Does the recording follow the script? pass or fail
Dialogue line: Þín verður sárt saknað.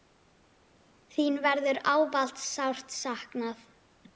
fail